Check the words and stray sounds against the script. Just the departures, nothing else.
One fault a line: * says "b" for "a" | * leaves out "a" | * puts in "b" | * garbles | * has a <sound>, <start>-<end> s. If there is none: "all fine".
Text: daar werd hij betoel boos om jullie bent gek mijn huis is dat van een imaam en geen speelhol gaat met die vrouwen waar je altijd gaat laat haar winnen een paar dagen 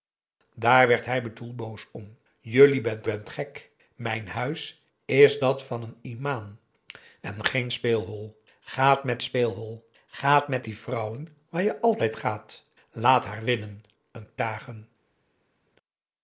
* puts in "bent"
* puts in "speelhol gaat met"
* leaves out "paar"